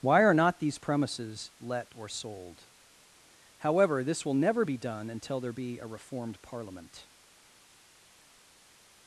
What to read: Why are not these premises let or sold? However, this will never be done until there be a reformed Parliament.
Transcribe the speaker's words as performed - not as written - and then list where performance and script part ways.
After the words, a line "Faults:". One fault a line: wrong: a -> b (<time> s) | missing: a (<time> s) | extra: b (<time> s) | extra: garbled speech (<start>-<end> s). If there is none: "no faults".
Why are not these premises let or sold? However, this will never be done until there be a reformed Parliament.
Faults:
no faults